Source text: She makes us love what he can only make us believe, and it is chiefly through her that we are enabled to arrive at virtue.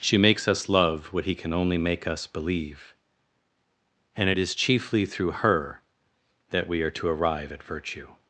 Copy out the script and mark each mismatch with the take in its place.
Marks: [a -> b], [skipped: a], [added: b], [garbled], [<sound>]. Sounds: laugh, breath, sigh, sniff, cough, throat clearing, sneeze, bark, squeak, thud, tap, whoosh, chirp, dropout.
She makes us love what he can only make us believe, and it is chiefly through her that we are [skipped: enabled] to arrive at virtue.